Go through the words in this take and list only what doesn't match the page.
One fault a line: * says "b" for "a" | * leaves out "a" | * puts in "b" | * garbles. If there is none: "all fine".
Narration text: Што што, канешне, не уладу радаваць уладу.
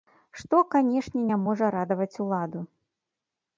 * leaves out "што"
* says "можа" for "уладу"